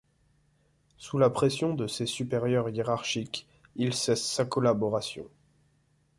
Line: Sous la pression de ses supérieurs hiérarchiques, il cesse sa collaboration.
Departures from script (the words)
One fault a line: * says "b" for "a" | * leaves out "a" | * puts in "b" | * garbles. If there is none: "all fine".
all fine